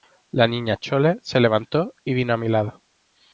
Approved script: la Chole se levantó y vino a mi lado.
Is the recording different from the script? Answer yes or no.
yes